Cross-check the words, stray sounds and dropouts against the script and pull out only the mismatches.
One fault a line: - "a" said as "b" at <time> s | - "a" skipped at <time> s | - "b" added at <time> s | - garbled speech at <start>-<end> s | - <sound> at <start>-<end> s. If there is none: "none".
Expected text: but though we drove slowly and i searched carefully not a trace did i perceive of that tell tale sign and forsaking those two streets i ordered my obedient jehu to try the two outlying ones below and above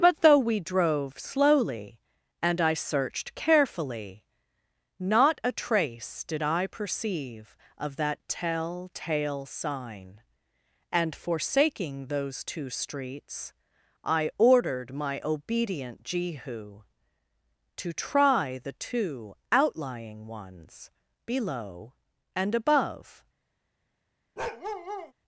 - bark at 24.4-25.1 s